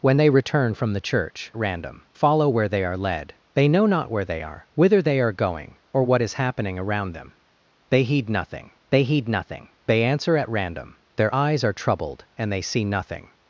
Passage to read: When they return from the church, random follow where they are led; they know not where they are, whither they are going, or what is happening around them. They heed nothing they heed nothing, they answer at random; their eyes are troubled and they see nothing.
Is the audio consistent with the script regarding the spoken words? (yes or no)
yes